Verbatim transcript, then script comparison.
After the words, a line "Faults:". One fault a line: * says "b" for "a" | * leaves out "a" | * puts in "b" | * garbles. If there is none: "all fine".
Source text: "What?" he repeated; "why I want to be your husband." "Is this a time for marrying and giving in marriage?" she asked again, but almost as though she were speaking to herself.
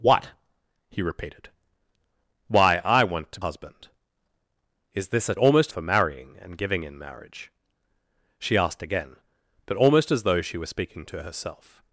"What?" he repeated; "why I want to husband." "Is this a almost for marrying and giving in marriage?" she asked again, but almost as though she were speaking to herself.
Faults:
* leaves out "be your"
* says "almost" for "time"